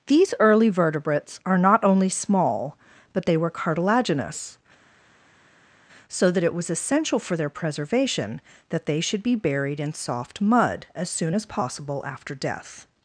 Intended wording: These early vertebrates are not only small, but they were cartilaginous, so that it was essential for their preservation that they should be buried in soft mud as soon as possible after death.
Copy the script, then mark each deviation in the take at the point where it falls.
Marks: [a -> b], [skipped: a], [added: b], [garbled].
These early vertebrates are not only small, but they were cartilaginous, so that it was essential for their preservation that they should be buried in soft mud as soon as possible after death.